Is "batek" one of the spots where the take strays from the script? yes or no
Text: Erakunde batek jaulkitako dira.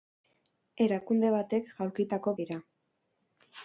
no